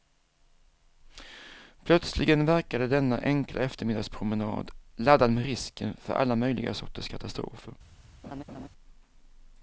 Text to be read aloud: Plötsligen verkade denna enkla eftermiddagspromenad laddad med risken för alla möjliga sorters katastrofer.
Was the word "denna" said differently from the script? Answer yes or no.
no